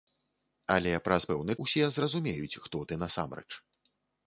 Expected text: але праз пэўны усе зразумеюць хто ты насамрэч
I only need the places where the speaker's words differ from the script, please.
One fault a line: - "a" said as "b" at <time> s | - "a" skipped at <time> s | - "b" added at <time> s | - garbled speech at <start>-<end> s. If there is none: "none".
none